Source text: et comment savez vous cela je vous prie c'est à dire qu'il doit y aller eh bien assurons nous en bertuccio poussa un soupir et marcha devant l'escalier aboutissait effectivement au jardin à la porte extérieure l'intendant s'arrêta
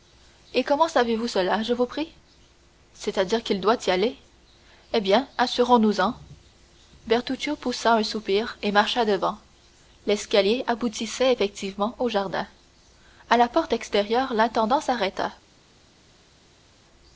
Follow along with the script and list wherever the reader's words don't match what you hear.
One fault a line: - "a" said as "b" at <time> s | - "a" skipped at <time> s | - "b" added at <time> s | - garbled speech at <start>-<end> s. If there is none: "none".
none